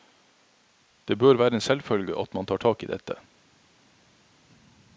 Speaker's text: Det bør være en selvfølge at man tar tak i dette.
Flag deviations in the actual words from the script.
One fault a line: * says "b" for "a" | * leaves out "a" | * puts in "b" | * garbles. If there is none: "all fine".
all fine